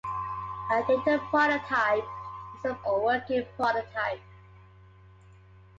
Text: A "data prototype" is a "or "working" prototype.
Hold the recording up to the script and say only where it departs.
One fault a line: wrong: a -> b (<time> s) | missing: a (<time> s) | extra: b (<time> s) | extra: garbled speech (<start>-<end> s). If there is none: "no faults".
no faults